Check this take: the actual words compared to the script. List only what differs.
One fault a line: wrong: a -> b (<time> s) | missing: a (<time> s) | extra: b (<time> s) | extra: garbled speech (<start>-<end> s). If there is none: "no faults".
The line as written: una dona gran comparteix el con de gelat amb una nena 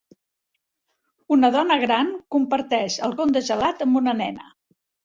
no faults